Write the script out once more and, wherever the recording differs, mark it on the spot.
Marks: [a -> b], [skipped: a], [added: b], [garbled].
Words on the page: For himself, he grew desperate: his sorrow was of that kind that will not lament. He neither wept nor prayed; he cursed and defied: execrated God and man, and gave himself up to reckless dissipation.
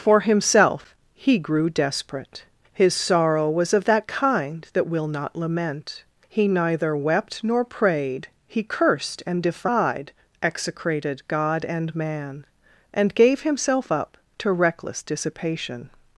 For himself, he grew desperate: his sorrow was of that kind that will not lament. He neither wept nor prayed; he cursed and defied: execrated God and man, and gave himself up to reckless dissipation.